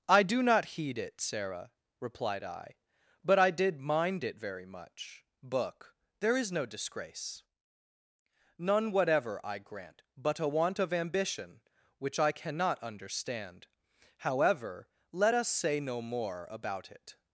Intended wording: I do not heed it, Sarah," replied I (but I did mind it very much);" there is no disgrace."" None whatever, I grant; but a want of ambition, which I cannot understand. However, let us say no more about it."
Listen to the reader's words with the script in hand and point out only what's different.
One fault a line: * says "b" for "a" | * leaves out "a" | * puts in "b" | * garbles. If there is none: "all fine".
* puts in "book"